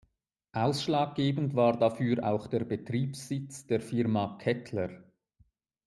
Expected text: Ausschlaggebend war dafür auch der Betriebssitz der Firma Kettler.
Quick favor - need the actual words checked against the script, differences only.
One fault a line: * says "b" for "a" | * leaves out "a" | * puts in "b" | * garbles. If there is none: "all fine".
all fine